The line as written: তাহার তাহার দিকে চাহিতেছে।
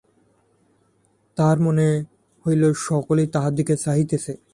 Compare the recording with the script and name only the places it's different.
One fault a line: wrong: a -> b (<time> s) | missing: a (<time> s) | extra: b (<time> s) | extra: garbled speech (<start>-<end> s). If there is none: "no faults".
extra: মনে হইল সকলেই (1.6 s)